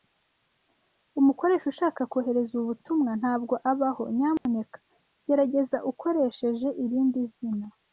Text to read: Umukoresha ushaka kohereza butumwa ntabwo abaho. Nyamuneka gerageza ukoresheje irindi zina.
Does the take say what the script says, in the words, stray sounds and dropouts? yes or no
no